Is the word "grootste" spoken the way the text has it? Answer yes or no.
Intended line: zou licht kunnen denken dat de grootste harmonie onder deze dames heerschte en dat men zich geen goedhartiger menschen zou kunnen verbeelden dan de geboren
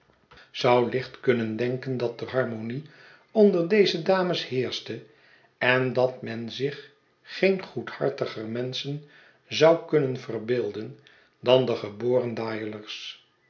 no